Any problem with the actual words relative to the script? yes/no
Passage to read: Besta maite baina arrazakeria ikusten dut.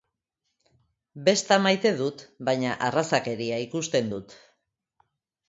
yes